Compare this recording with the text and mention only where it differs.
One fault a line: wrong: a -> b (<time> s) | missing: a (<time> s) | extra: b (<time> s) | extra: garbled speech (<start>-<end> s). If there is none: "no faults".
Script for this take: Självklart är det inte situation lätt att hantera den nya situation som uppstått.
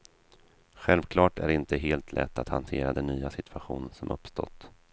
wrong: situation -> helt (1.8 s)